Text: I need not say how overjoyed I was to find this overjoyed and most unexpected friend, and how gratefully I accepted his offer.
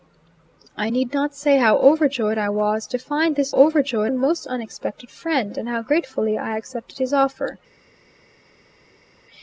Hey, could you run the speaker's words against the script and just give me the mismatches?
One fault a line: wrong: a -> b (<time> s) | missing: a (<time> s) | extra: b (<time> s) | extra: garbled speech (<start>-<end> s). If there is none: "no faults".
no faults